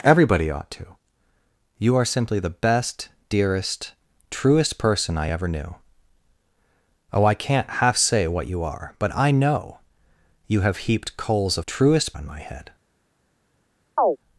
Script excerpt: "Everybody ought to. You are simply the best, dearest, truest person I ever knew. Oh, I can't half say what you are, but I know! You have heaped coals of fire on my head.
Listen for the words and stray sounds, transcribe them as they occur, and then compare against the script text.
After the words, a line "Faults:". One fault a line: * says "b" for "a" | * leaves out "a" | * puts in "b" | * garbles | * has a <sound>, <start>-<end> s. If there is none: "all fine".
"Everybody ought to. You are simply the best, dearest, truest person I ever knew. Oh, I can't half say what you are, but I know! You have heaped coals of truest on my head.
Faults:
* says "truest" for "fire"
* has a chirp, 14.0-14.2 s